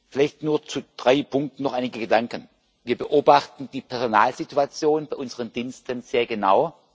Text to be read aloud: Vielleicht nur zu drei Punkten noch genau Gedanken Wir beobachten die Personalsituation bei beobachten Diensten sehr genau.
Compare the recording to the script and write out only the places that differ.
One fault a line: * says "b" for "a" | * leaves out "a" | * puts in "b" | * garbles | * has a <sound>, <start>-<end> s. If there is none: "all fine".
* says "einige" for "genau"
* says "unseren" for "beobachten"